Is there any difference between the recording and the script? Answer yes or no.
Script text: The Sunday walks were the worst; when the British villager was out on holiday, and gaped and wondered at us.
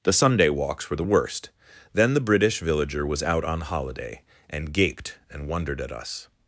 yes